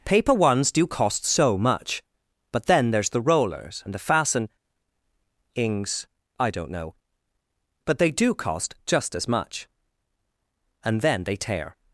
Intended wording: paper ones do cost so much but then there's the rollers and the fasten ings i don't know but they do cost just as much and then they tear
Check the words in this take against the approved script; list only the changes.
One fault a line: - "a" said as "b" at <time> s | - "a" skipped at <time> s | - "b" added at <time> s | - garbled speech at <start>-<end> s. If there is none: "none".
none